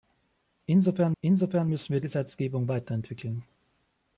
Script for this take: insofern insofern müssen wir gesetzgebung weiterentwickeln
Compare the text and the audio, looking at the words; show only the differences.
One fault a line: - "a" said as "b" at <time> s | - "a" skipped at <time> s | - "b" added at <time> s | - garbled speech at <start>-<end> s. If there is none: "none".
none